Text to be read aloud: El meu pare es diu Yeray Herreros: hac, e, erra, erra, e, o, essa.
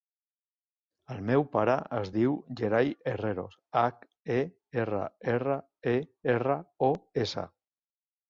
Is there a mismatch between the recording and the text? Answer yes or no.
yes